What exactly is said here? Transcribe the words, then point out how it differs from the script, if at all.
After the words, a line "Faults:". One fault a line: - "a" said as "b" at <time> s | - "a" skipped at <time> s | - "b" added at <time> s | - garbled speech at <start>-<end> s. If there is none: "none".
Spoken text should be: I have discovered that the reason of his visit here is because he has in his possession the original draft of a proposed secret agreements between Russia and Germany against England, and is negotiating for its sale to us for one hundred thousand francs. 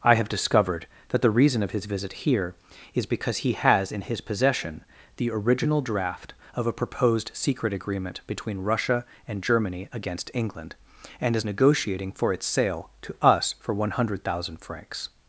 I have discovered that the reason of his visit here is because he has in his possession the original draft of a proposed secret agreement between Russia and Germany against England, and is negotiating for its sale to us for one hundred thousand francs.
Faults:
- "agreements" said as "agreement" at 7.7 s